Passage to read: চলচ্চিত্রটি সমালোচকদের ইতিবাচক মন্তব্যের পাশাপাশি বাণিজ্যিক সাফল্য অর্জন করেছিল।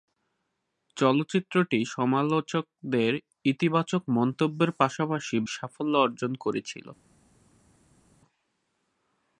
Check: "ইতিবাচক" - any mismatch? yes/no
no